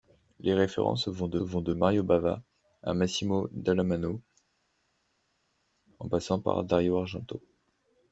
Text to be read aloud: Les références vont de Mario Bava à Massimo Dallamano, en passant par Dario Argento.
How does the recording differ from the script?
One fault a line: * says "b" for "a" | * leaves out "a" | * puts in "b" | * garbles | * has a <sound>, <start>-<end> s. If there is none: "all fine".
* puts in "vont de"